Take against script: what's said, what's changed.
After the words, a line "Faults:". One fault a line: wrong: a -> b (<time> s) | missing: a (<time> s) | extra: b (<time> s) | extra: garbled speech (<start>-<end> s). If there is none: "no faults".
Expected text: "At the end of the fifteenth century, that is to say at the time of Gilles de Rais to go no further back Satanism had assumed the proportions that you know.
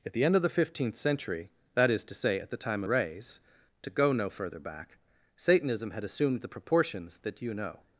"At the end of the fifteenth century, that is to say at the time Rais to go no further back Satanism had assumed the proportions that you know.
Faults:
missing: of Gilles de (2.8 s)